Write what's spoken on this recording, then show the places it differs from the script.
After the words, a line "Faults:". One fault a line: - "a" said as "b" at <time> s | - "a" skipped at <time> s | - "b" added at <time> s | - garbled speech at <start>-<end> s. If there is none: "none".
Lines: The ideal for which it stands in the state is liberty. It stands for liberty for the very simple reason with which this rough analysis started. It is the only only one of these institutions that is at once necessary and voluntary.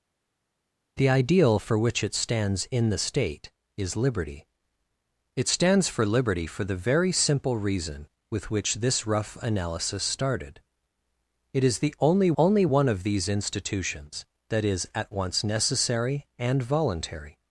The ideal for which it stands in the state is liberty. It stands for liberty for the very simple reason with which this rough analysis started. It is the only only one of these institutions that is at once necessary and voluntary.
Faults:
none